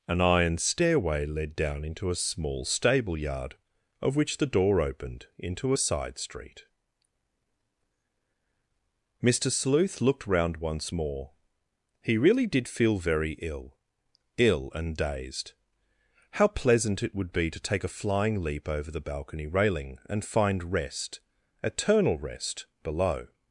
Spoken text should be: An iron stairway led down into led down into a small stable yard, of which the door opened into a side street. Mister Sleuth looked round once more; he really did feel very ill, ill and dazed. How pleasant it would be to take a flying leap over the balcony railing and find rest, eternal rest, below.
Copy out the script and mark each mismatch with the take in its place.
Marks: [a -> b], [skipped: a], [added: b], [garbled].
An iron stairway led down into [skipped: led down into] a small stable yard, of which the door opened into a side street. Mister Sleuth looked round once more; he really did feel very ill, ill and dazed. How pleasant it would be to take a flying leap over the balcony railing and find rest, eternal rest, below.